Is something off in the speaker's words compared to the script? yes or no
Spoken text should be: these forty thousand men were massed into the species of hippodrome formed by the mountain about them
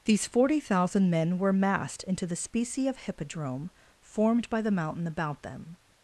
yes